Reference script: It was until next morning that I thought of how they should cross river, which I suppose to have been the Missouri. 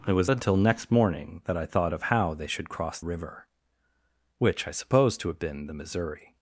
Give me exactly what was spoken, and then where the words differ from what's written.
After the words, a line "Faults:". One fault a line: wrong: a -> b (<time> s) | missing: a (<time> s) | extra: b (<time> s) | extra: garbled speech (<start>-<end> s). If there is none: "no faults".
It was until next morning that I thought of how they should cross river, which I suppose to have been the Missouri.
Faults:
no faults